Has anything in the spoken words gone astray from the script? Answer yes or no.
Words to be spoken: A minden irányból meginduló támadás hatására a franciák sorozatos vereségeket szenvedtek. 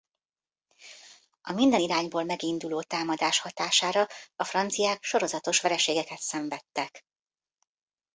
no